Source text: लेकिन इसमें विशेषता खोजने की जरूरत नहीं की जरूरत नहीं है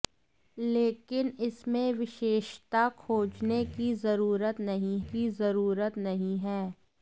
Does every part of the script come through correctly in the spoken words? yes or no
yes